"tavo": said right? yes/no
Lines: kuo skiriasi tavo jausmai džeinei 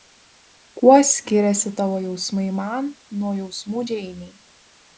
yes